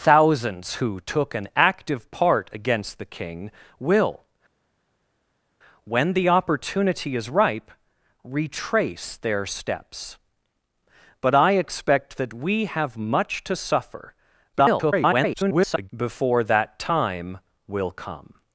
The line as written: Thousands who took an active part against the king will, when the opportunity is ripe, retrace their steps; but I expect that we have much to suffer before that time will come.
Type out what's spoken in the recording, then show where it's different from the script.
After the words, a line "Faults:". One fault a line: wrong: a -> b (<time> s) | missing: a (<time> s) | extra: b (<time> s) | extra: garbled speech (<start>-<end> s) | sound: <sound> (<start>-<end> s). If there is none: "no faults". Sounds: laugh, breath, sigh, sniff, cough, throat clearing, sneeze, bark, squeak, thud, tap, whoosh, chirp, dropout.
Thousands who took an active part against the king will, when the opportunity is ripe, retrace their steps; but I expect that we have much to suffer [garbled] before that time will come.
Faults:
extra: garbled speech (14.5-15.9 s)